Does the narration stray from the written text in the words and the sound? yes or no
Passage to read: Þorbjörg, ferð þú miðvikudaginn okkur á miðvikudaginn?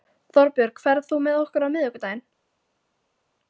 yes